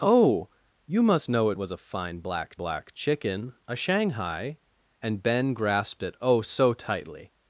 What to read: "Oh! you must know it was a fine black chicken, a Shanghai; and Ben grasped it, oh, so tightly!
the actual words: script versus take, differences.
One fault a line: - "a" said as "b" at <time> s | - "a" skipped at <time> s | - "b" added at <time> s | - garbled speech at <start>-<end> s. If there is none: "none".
- "black" added at 2.5 s